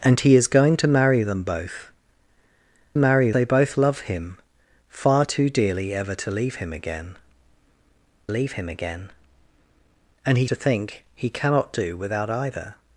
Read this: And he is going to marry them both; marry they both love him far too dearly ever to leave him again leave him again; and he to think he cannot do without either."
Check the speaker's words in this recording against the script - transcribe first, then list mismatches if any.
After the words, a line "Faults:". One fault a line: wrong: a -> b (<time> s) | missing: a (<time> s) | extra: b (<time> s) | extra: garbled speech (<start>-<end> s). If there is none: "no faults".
And he is going to marry them both; marry they both love him far too dearly ever to leave him again leave him again; and he to think he cannot do without either."
Faults:
no faults